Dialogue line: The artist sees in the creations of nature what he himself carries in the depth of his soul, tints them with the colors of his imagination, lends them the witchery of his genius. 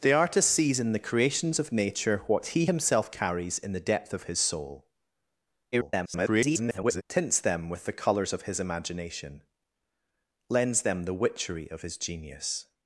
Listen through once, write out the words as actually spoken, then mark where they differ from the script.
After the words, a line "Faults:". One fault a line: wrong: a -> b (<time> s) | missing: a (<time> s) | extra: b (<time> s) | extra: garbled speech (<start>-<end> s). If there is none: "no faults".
The artist sees in the creations of nature what he himself carries in the depth of his soul, [garbled] tints them with the colors of his imagination, lends them the witchery of his genius.
Faults:
extra: garbled speech (5.7-7.0 s)